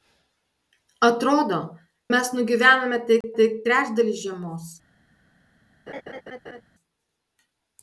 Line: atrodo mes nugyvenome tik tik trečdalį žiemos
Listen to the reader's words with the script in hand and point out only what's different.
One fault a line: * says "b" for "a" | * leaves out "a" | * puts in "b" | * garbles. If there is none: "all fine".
all fine